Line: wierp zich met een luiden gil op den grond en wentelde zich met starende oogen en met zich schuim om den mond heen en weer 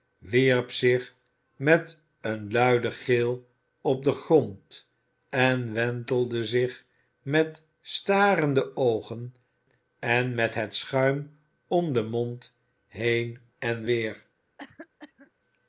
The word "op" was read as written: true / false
true